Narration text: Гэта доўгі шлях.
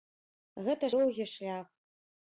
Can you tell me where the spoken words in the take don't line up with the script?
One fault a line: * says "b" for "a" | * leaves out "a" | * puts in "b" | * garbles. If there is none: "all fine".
all fine